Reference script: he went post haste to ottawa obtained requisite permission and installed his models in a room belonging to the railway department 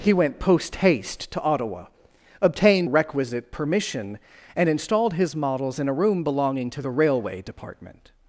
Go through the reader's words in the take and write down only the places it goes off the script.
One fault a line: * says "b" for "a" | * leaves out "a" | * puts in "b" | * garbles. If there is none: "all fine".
all fine